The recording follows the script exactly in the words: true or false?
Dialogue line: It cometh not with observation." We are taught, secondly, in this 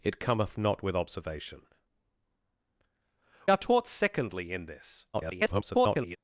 false